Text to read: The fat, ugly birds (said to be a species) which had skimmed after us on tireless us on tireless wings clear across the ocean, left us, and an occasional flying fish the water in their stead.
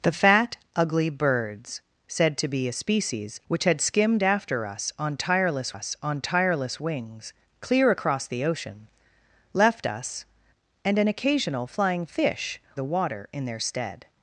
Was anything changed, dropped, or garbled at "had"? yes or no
no